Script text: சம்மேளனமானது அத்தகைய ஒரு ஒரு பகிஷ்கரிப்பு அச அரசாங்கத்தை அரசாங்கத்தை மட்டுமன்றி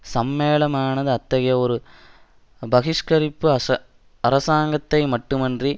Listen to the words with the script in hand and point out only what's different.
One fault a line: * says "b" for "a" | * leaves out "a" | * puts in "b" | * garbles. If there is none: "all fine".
* leaves out "ஒரு"
* leaves out "அரசாங்கத்தை"